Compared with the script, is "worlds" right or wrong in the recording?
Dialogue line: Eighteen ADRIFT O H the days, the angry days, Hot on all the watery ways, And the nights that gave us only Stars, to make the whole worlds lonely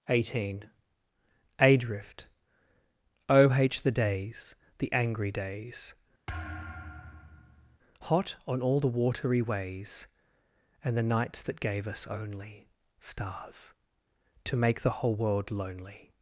wrong